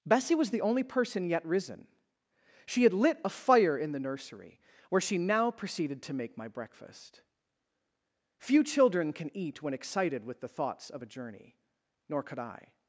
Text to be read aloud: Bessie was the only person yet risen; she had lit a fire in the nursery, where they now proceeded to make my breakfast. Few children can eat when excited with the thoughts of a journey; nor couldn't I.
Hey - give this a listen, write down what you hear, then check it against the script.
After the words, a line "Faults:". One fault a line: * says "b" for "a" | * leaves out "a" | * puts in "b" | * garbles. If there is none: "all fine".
Bessie was the only person yet risen; she had lit a fire in the nursery, where she now proceeded to make my breakfast. Few children can eat when excited with the thoughts of a journey; nor could I.
Faults:
* says "she" for "they"
* says "could" for "couldn't"